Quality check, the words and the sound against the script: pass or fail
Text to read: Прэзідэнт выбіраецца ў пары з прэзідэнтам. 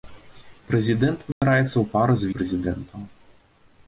fail